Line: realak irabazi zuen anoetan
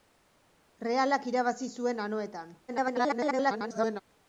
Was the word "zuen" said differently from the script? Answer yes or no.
no